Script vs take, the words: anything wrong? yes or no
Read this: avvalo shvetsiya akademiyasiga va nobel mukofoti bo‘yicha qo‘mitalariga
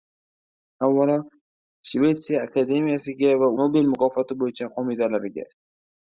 no